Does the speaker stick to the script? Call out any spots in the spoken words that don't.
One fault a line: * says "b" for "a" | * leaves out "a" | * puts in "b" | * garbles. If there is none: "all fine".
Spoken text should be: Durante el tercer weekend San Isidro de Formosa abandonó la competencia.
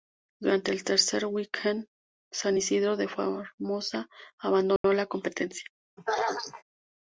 all fine